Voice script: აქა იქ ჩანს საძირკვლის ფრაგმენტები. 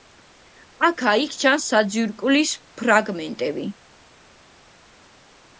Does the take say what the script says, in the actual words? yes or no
yes